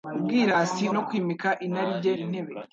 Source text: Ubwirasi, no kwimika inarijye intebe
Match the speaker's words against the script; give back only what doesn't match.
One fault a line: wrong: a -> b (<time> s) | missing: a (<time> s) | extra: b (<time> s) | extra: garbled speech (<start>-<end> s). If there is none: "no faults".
no faults